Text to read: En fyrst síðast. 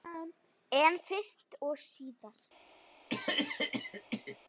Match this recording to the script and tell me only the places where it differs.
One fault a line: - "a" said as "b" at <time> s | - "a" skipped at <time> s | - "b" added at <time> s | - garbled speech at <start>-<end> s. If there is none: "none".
- "og" added at 1.7 s